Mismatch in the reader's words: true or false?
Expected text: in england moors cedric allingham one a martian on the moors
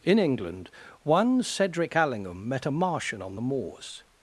true